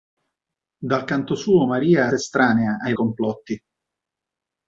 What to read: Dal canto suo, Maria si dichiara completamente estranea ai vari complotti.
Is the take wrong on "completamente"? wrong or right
wrong